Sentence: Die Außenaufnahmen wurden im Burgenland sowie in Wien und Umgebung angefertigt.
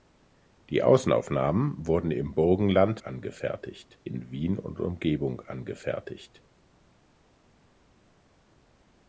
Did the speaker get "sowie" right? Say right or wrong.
wrong